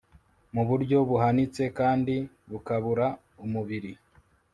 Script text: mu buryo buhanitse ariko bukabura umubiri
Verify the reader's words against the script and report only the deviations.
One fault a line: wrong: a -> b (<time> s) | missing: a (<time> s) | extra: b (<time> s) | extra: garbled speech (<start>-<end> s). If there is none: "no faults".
wrong: ariko -> kandi (1.8 s)